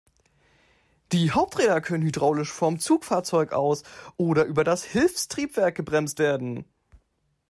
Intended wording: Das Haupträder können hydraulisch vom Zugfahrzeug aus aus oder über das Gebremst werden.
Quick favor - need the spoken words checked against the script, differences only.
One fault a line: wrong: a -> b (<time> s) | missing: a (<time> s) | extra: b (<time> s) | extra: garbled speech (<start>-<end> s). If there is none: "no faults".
wrong: Das -> Die (1.1 s)
missing: aus (3.8 s)
extra: Hilfstriebwerk (4.8 s)